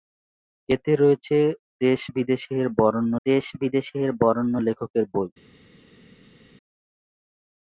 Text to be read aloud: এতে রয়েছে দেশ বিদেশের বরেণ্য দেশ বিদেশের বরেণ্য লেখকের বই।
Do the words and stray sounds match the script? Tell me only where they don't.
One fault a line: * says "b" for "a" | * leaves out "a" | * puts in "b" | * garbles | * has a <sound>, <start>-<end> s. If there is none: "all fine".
all fine